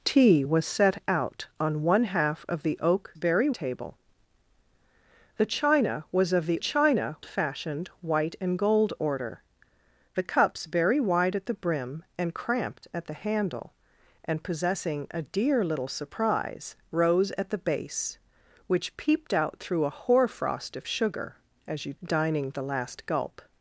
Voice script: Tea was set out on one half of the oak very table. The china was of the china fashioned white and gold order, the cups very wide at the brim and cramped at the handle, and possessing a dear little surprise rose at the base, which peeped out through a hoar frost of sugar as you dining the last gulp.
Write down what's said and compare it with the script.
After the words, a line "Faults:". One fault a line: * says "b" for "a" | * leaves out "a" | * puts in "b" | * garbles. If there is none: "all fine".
Tea was set out on one half of the oak very table. The china was of the china fashioned white and gold order, the cups very wide at the brim and cramped at the handle, and possessing a dear little surprise rose at the base, which peeped out through a hoar frost of sugar as you dining the last gulp.
Faults:
all fine